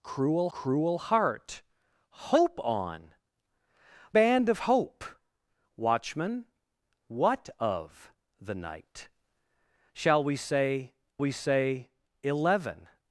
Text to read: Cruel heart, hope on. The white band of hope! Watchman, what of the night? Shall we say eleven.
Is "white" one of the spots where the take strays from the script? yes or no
yes